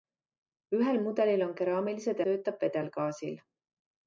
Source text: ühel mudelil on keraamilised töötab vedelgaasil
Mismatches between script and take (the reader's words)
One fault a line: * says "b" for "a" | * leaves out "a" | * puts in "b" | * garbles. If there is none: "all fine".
all fine